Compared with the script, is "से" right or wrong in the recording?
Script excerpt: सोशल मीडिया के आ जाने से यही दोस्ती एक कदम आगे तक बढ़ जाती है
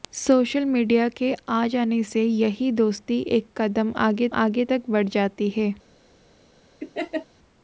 right